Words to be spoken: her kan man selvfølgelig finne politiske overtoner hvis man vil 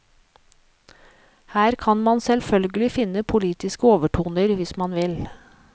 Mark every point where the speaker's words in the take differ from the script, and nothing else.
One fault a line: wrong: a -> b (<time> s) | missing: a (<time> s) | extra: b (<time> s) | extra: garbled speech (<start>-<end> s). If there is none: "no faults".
no faults